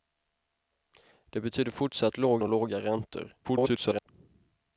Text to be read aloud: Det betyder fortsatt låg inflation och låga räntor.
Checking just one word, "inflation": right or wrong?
wrong